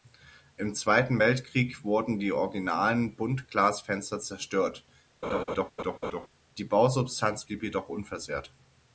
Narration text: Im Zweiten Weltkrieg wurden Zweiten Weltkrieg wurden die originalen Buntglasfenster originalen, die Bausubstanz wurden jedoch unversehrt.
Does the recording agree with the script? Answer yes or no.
no